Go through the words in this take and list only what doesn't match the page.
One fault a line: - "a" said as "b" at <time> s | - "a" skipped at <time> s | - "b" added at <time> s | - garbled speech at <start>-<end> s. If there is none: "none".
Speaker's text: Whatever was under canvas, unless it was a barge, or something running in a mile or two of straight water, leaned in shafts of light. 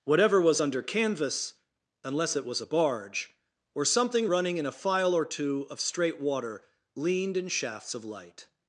- "mile" said as "file" at 4.7 s